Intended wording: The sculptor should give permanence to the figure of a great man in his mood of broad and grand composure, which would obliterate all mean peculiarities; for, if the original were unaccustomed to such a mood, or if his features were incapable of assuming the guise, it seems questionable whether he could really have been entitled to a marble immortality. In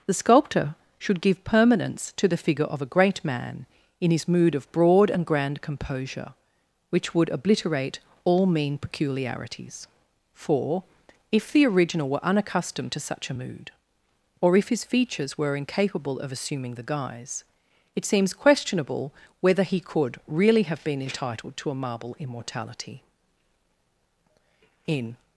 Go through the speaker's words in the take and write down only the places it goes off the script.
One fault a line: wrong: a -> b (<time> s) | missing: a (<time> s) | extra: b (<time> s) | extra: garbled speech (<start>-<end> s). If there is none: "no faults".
no faults